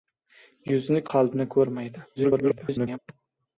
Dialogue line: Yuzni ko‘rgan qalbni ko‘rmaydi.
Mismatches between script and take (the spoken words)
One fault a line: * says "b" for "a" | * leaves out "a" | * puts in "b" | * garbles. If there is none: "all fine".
* leaves out "ko‘rgan"
* garbles